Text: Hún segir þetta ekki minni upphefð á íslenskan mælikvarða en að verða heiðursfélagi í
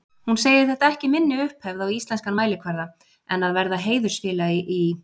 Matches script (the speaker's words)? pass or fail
pass